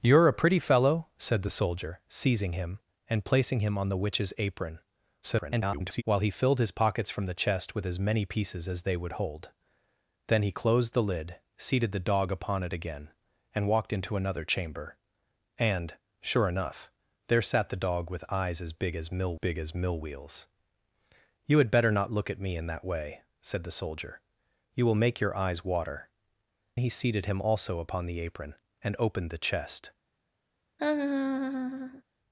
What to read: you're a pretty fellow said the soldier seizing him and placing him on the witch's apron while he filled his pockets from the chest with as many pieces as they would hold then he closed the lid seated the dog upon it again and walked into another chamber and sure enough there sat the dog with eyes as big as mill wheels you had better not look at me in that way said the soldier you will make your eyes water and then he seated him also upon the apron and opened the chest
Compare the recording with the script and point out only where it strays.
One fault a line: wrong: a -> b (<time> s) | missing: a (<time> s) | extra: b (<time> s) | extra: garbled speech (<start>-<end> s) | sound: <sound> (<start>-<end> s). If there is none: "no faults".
extra: garbled speech (5.2-6.0 s)
extra: big as mill (19.3 s)
missing: and then (26.1 s)
sound: laugh (30.8-32.0 s)